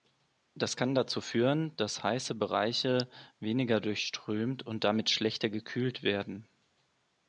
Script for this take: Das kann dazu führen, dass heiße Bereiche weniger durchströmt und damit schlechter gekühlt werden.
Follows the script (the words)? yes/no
yes